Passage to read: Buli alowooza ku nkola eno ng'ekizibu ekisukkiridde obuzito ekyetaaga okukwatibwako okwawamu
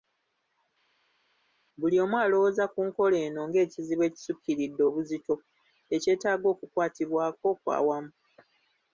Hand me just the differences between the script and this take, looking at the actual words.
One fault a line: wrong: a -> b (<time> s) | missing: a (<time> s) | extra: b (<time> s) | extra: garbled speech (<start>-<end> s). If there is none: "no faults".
extra: omu (2.0 s)